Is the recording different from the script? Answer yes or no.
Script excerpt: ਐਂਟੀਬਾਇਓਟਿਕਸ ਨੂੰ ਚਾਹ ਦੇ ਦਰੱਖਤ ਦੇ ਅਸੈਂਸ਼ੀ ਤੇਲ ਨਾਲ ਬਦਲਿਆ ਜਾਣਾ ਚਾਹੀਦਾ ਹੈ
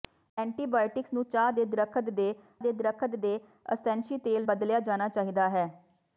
yes